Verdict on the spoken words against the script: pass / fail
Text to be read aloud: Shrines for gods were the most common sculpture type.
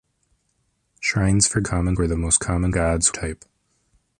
fail